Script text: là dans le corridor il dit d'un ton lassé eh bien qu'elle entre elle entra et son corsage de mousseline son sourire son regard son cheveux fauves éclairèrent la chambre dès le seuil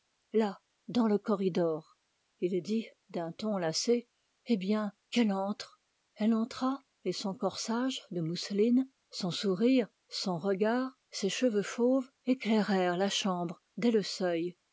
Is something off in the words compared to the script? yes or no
yes